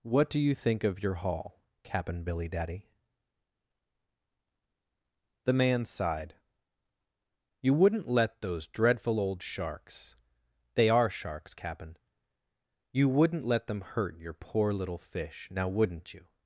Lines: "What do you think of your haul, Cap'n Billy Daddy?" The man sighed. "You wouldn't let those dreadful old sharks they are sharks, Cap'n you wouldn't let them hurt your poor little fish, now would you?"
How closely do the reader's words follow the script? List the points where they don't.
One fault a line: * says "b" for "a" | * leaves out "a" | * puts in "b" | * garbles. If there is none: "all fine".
* says "wouldn't" for "would"